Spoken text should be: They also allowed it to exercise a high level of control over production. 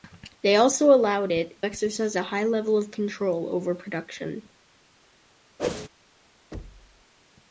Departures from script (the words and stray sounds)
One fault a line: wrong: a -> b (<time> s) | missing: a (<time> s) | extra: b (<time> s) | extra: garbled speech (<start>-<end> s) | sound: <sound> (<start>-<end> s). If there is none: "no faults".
missing: to (1.6 s)
sound: whoosh (5.6-5.9 s)
sound: thud (6.5-7.0 s)